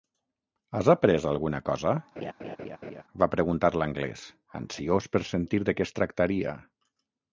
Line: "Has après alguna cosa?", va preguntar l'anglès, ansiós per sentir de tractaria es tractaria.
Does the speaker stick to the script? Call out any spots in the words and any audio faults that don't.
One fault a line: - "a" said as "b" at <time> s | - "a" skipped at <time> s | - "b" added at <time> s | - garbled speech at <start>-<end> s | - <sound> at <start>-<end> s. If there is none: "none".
- laugh at 2.2-3.0 s
- "tractaria" said as "què" at 5.8 s